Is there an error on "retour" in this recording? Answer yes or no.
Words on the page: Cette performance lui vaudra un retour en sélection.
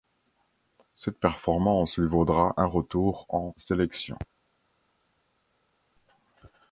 no